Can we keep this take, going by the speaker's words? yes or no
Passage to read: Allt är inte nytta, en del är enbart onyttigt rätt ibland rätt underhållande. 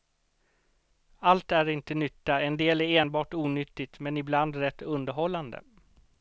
no